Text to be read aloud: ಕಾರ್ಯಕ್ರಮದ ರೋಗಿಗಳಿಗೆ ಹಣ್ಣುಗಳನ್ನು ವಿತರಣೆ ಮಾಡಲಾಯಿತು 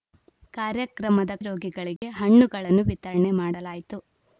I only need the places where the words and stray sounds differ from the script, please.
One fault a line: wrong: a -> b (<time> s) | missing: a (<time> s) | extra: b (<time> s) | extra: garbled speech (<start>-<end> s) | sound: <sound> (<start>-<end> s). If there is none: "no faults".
sound: dropout (2.0-2.0 s)